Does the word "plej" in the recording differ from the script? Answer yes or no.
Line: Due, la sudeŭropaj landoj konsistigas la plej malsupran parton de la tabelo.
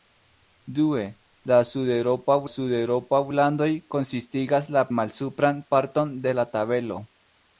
yes